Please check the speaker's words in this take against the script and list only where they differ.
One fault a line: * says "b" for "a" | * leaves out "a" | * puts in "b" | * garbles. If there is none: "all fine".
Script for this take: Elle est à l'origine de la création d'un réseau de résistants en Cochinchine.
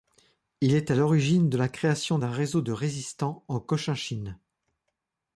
* says "Il" for "Elle"